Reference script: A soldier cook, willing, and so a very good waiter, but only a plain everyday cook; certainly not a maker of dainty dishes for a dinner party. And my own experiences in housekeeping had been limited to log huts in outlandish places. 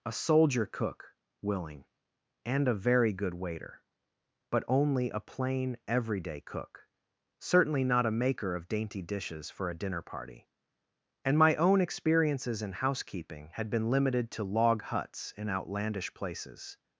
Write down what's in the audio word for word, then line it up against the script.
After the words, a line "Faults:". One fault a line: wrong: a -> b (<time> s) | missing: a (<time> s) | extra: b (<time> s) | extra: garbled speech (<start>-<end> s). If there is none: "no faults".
A soldier cook, willing, and a very good waiter, but only a plain everyday cook; certainly not a maker of dainty dishes for a dinner party. And my own experiences in housekeeping had been limited to log huts in outlandish places.
Faults:
missing: so (2.7 s)